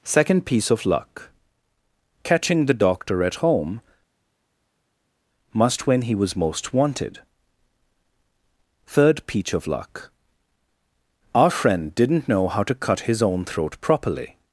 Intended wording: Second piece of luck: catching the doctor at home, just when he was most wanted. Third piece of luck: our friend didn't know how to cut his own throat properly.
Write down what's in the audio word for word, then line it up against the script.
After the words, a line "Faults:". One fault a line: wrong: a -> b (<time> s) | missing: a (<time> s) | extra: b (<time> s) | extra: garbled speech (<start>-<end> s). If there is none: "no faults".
Second piece of luck: catching the doctor at home, must when he was most wanted. Third peach of luck: our friend didn't know how to cut his own throat properly.
Faults:
wrong: just -> must (5.5 s)
wrong: piece -> peach (9.3 s)